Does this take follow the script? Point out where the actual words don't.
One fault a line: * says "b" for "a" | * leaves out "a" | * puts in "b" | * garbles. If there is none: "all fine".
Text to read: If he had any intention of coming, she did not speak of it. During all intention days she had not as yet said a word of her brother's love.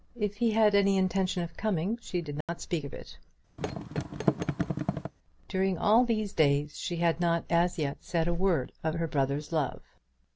* says "these" for "intention"